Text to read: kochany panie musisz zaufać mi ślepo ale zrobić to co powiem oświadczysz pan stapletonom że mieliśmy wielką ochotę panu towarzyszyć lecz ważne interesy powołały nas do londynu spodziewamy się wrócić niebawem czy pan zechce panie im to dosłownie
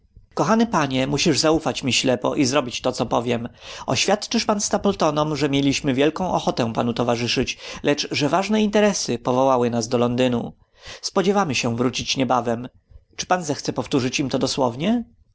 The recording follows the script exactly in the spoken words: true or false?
false